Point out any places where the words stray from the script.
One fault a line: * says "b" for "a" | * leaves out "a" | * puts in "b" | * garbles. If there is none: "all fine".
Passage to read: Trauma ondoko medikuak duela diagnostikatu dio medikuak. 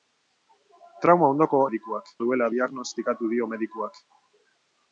all fine